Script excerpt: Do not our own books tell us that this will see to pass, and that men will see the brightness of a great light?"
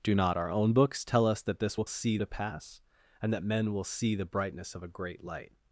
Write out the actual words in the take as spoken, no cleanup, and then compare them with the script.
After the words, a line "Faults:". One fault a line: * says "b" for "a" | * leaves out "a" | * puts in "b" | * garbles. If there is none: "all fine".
Do not our own books tell us that this will see to pass, and that men will see the brightness of a great light?"
Faults:
all fine